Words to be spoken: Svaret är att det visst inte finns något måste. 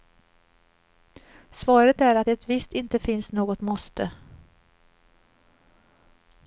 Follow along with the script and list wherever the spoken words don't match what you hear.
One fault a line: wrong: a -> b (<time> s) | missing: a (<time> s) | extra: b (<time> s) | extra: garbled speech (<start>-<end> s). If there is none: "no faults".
no faults